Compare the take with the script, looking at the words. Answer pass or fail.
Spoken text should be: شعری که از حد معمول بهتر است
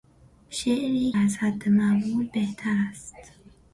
fail